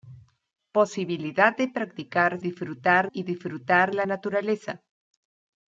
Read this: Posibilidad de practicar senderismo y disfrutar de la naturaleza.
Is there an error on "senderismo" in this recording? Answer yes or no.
yes